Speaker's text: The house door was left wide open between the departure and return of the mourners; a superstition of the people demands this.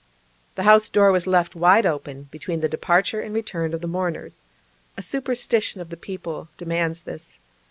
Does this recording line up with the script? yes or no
yes